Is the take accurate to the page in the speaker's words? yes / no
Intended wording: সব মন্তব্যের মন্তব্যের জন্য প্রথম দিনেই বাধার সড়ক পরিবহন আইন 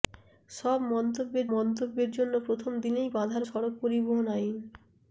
yes